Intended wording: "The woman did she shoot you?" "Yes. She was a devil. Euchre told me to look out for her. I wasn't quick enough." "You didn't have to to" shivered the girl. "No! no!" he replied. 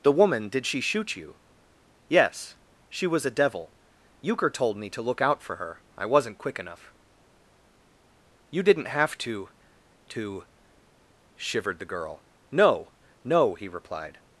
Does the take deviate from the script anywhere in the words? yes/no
no